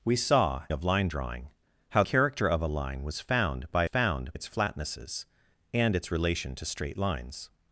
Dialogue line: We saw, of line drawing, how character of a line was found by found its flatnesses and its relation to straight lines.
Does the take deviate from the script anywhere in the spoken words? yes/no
no